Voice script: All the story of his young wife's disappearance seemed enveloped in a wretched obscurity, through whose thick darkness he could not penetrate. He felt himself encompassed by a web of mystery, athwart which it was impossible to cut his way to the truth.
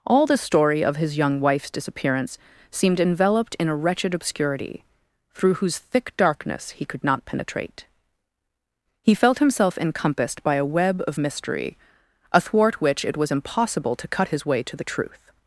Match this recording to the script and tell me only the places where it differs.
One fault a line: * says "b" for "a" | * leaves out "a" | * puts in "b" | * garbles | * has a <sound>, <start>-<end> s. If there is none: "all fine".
all fine